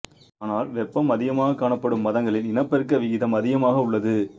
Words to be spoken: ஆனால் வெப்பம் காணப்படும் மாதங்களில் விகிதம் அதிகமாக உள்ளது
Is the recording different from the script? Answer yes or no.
yes